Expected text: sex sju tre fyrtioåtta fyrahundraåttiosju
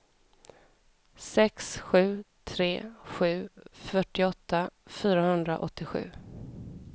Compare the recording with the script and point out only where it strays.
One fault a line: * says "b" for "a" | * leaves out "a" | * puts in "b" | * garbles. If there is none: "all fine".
* puts in "sju"